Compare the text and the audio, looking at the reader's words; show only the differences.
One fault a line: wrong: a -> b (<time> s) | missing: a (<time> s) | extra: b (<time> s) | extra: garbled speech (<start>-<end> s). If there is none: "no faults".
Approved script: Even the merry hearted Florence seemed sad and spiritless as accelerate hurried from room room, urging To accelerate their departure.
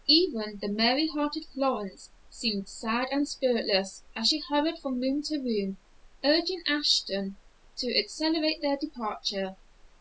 wrong: accelerate -> she (4.3 s)
extra: to (5.2 s)
extra: Ashton (6.7 s)